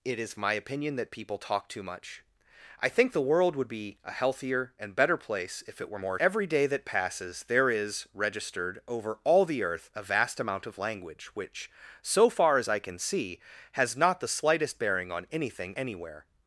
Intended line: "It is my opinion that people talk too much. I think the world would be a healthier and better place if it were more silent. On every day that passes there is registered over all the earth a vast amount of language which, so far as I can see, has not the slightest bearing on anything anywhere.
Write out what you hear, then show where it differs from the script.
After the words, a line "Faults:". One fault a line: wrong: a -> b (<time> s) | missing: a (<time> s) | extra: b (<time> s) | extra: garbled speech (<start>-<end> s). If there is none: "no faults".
"It is my opinion that people talk too much. I think the world would be a healthier and better place if it were more every day that passes there is registered over all the earth a vast amount of language which, so far as I can see, has not the slightest bearing on anything anywhere.
Faults:
missing: silent On (6.2 s)